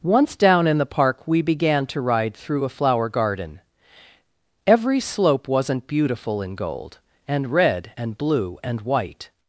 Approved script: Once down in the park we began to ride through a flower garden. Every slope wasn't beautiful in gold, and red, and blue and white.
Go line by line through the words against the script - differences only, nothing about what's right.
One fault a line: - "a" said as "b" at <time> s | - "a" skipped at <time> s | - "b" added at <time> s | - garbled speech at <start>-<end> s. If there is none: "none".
none